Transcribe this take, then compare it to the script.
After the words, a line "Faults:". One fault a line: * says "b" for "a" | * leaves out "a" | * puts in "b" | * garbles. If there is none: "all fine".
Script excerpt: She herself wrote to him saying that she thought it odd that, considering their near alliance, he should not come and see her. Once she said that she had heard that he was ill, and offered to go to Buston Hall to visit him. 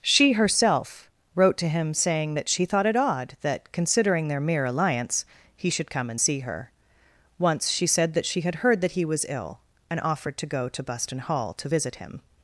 She herself wrote to him saying that she thought it odd that, considering their mere alliance, he should come and see her. Once she said that she had heard that he was ill, and offered to go to Buston Hall to visit him.
Faults:
* says "mere" for "near"
* leaves out "not"